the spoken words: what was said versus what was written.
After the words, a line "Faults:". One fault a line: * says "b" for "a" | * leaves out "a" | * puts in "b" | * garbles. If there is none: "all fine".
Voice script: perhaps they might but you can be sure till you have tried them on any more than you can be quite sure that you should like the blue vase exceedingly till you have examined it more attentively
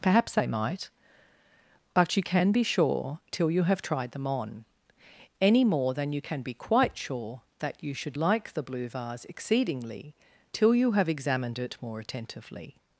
perhaps they might but you can be sure till you have tried them on any more than you can be quite sure that you should like the blue vase exceedingly till you have examined it more attentively
Faults:
all fine